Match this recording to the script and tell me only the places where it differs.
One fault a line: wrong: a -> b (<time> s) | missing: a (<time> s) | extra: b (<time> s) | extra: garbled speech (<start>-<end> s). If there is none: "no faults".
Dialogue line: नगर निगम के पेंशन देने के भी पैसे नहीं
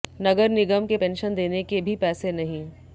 no faults